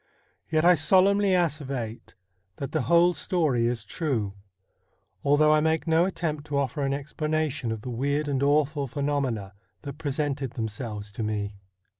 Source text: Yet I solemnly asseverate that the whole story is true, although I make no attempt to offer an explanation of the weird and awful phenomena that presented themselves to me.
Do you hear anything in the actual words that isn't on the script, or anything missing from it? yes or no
no